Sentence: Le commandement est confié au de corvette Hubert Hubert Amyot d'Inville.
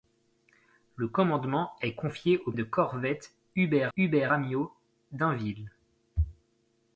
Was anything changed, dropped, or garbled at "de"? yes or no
no